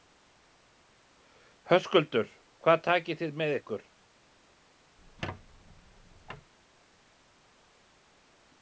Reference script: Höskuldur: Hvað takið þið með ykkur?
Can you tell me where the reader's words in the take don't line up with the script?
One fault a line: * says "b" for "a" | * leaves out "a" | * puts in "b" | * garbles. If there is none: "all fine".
all fine